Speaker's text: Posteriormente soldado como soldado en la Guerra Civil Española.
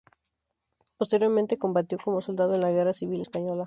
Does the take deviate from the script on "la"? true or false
false